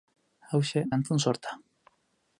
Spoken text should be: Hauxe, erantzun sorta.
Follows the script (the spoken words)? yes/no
yes